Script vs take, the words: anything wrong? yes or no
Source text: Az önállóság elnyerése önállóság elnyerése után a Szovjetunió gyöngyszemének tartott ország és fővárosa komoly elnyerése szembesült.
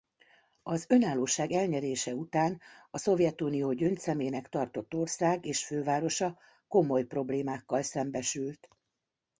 yes